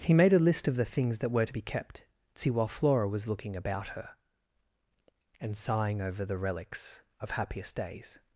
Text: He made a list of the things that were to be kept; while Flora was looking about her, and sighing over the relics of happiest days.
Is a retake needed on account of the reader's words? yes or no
yes